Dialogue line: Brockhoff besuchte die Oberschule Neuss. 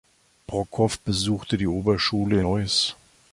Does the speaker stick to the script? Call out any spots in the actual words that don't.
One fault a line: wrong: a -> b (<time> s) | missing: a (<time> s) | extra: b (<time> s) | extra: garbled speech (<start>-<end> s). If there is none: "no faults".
no faults